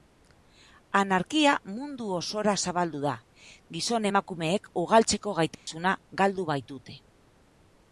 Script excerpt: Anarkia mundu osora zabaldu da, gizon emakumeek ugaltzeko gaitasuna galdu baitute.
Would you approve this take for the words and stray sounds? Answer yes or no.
no